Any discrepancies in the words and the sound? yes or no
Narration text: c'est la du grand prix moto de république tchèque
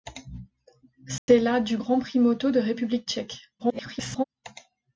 yes